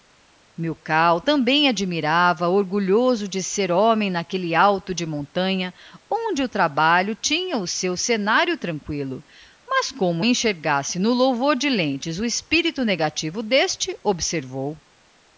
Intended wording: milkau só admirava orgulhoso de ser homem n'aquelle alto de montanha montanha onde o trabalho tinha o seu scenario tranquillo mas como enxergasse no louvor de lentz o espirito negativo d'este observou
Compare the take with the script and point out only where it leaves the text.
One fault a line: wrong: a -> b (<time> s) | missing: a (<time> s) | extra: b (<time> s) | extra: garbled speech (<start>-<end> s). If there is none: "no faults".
wrong: só -> também (1.2 s)
missing: montanha (5.7 s)